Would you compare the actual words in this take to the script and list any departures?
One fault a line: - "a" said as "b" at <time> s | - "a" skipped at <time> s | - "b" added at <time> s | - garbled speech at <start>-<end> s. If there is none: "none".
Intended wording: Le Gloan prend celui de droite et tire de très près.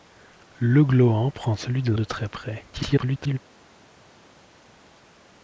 - "droite et tire" skipped at 1.9 s
- garbled speech at 2.7-3.4 s